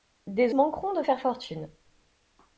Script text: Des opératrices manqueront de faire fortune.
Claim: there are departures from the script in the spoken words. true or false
true